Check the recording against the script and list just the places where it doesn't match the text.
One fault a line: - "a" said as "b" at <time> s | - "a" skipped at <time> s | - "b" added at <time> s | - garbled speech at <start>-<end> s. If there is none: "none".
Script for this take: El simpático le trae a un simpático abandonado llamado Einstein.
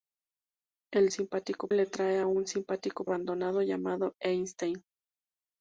none